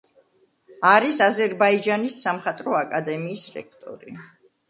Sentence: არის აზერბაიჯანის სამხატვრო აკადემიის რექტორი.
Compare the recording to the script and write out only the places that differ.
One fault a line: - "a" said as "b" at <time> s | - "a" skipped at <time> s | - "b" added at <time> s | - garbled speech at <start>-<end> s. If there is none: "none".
none